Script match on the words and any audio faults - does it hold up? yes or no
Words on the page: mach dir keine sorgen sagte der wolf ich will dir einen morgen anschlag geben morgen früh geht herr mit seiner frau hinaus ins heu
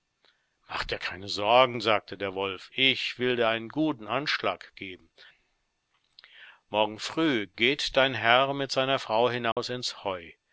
no